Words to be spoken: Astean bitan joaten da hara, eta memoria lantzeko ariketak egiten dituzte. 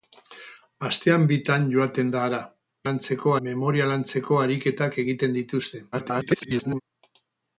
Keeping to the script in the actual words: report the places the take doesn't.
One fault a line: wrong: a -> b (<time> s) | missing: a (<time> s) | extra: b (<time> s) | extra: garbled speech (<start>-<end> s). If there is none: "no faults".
wrong: eta -> lantzeko (2.9 s)
extra: garbled speech (5.9-6.8 s)